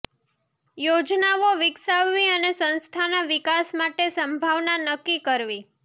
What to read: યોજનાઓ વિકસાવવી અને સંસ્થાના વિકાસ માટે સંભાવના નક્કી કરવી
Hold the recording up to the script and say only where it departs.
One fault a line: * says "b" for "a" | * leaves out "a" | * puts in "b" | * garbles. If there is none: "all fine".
all fine